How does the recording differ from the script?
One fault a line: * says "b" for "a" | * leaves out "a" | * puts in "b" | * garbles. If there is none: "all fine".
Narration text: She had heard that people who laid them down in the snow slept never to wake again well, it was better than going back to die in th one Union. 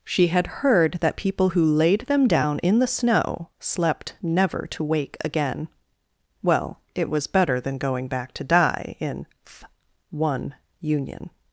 all fine